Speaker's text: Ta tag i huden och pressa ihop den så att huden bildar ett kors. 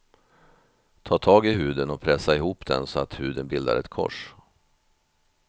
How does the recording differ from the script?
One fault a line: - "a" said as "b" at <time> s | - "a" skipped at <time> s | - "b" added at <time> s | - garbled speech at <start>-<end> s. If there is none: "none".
none